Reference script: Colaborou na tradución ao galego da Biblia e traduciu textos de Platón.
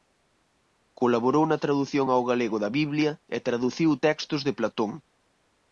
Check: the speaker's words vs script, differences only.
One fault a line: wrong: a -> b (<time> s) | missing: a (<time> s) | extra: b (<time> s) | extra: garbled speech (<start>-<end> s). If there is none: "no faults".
no faults